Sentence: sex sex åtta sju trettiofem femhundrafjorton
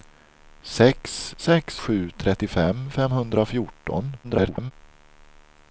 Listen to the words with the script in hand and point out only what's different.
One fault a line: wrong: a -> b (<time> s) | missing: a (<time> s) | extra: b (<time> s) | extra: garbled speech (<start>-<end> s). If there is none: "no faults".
missing: åtta (1.8 s)
extra: garbled speech (4.2-4.7 s)